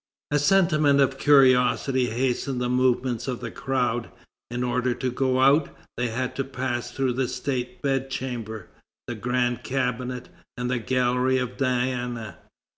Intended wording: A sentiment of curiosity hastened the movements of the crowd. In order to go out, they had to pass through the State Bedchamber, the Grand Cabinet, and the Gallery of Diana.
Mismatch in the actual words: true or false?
false